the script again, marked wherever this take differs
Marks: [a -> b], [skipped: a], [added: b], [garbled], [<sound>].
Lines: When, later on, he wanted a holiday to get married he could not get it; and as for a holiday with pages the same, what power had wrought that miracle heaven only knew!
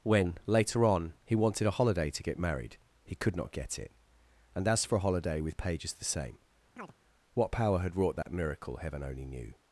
When, later on, he wanted a holiday to get married he could not get it; and as for a holiday with pages the same, [chirp] what power had wrought that [dropout] miracle heaven only knew!